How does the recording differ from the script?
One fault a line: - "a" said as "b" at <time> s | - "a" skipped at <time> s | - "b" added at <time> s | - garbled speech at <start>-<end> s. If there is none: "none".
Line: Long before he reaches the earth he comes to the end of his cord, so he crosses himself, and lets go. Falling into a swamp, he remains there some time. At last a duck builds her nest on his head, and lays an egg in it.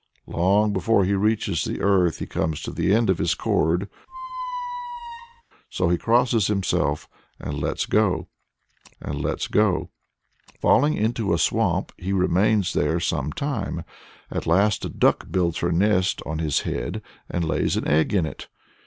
- "and lets go" added at 9.0 s